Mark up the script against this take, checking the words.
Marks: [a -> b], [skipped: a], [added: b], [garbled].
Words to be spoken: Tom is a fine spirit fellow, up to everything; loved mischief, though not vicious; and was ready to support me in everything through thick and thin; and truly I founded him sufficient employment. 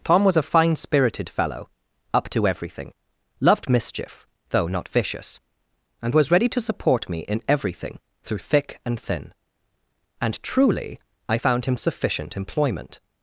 Tom [is -> was] a fine [spirit -> spirited] fellow, up to everything; loved mischief, though not vicious; and was ready to support me in everything through thick and thin; and truly I [founded -> found] him sufficient employment.